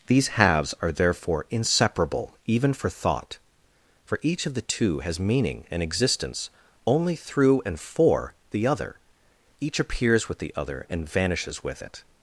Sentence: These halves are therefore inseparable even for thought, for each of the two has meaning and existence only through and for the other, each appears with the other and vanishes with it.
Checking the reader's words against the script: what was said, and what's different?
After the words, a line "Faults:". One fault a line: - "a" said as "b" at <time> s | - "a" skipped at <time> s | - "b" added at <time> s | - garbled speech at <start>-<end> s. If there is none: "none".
These halves are therefore inseparable even for thought, for each of the two has meaning and existence only through and for the other, each appears with the other and vanishes with it.
Faults:
none